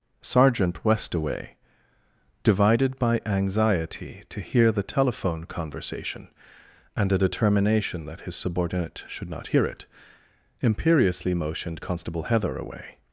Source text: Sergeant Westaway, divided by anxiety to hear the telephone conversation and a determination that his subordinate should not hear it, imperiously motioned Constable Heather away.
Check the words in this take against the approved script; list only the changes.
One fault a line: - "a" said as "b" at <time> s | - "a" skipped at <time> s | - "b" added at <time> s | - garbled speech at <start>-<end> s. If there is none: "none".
none